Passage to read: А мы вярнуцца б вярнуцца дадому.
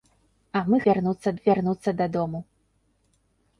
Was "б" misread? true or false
false